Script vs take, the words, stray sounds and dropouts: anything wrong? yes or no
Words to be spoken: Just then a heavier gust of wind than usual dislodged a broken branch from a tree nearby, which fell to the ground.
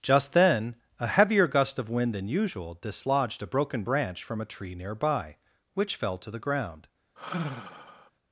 yes